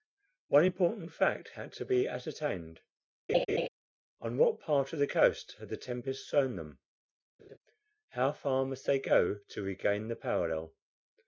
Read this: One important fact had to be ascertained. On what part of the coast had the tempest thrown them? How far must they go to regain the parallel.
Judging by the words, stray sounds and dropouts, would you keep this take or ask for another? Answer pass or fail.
fail